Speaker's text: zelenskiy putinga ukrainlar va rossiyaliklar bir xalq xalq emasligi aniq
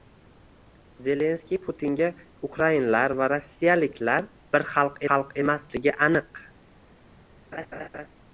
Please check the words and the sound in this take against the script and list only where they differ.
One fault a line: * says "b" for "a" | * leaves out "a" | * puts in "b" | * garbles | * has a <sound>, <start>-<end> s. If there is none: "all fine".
* has a laugh, 7.5-8.1 s